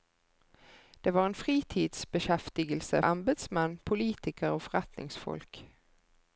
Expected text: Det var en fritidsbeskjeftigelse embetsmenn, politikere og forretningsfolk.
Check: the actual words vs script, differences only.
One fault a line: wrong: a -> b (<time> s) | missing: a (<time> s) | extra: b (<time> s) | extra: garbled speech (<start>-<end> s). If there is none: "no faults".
no faults